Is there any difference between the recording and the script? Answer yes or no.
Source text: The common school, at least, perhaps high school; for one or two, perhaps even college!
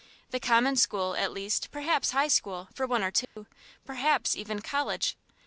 no